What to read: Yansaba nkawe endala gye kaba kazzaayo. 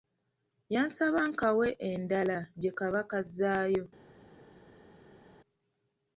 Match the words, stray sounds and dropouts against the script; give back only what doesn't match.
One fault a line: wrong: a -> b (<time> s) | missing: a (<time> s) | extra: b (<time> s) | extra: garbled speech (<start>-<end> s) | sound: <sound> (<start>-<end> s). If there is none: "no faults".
no faults